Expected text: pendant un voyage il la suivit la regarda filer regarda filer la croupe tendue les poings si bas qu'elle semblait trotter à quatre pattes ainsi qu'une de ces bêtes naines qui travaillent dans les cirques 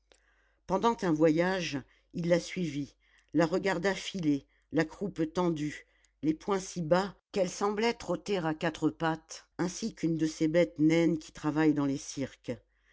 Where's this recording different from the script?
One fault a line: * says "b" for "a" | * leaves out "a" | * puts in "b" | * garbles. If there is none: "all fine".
* leaves out "regarda filer"